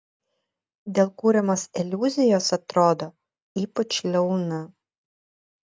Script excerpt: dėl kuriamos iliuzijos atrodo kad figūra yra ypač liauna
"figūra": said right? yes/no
no